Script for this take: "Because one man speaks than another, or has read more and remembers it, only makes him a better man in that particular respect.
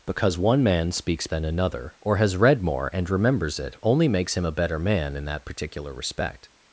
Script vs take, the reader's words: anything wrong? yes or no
no